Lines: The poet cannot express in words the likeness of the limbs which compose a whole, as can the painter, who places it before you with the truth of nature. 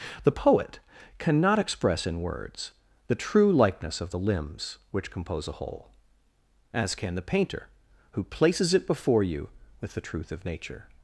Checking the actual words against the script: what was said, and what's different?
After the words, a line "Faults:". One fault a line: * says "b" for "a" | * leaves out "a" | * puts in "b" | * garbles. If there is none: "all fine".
The poet cannot express in words the true likeness of the limbs which compose a whole, as can the painter, who places it before you with the truth of nature.
Faults:
* puts in "true"